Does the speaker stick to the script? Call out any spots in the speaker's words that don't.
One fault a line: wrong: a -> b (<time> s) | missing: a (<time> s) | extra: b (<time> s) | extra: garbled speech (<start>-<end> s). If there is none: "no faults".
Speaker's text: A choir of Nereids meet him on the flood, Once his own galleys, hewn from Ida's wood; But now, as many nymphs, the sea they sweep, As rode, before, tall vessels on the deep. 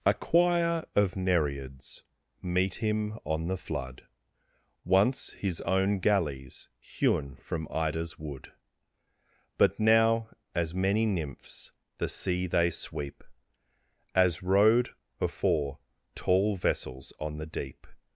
wrong: before -> afore (15.2 s)